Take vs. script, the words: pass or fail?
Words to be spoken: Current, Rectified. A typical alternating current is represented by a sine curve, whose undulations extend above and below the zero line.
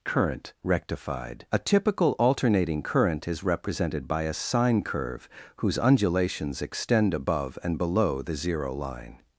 pass